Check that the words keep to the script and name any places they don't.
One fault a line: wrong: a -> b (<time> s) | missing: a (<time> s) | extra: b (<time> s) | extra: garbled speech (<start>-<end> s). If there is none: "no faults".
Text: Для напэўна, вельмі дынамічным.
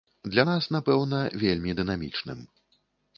extra: нас (0.5 s)